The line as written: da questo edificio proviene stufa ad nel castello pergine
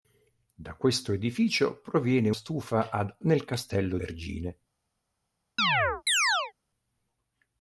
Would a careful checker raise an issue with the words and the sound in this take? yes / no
yes